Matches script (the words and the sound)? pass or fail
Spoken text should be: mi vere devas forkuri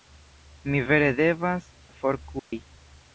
fail